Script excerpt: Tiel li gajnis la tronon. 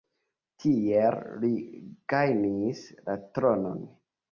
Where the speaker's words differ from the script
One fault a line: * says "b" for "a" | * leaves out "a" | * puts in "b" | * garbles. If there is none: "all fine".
all fine